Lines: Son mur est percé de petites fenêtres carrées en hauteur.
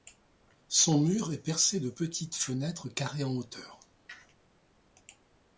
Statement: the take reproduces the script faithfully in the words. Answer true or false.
true